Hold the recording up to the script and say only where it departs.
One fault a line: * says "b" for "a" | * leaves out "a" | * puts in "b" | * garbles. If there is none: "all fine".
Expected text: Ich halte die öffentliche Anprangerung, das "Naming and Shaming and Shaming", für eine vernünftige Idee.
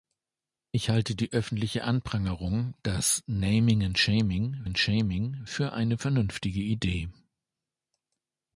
all fine